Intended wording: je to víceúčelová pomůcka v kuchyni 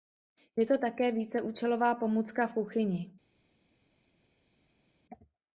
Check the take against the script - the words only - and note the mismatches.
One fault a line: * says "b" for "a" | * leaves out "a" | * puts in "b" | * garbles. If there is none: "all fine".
* puts in "také"